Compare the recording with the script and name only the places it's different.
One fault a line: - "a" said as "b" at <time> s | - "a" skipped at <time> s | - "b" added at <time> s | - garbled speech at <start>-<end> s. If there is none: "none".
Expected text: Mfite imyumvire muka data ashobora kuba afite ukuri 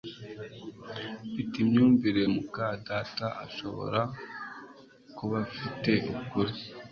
none